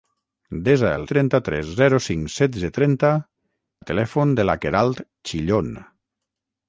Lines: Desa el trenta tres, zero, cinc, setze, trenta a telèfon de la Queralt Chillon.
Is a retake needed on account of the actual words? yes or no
no